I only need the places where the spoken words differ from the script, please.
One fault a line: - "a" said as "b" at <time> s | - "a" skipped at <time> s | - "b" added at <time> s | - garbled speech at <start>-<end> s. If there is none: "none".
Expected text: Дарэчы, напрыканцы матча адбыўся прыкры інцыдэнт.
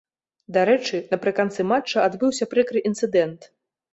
none